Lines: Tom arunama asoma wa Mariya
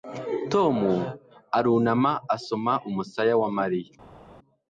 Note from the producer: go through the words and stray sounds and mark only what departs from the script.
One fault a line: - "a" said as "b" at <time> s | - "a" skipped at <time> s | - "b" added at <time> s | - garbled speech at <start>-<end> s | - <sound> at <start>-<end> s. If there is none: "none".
- "umusaya" added at 2.9 s